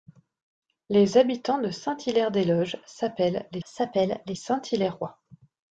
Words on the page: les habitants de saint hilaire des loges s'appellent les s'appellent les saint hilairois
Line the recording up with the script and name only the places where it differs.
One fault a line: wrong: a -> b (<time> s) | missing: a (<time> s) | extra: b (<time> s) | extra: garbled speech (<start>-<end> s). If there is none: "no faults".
no faults